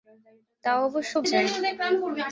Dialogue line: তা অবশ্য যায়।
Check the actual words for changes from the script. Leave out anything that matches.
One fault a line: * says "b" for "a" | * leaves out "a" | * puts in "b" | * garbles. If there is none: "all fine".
all fine